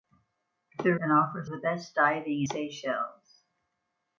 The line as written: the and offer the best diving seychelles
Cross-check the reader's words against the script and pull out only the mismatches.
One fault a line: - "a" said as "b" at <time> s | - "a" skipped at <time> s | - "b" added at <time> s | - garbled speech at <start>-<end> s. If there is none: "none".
none